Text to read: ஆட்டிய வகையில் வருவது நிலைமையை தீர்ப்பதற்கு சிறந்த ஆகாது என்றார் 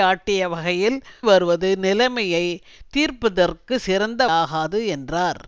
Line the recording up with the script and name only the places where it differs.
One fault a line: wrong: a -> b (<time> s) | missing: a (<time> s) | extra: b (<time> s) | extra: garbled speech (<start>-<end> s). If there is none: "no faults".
no faults